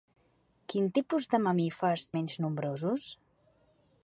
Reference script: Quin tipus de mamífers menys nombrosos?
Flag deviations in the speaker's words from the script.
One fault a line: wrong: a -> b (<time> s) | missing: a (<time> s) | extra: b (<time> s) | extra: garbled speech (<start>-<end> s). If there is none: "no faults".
no faults